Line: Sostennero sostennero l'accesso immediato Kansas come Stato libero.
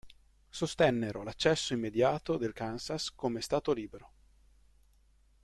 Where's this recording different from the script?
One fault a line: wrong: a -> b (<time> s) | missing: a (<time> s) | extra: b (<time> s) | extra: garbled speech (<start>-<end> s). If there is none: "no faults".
missing: sostennero (1.2 s)
extra: del (2.4 s)